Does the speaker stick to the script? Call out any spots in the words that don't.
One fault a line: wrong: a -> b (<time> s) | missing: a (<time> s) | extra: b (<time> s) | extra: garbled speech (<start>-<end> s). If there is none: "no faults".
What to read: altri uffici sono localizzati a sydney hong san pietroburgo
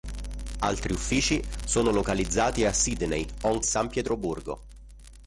no faults